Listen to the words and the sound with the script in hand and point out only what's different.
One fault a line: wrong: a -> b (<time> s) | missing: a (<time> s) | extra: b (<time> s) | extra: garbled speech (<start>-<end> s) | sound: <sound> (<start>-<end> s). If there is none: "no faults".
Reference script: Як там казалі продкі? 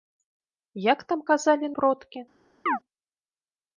sound: chirp (2.7-2.8 s)